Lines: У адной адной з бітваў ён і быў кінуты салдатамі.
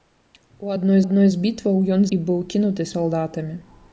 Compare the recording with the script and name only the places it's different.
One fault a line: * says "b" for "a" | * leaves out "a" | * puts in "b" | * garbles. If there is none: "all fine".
all fine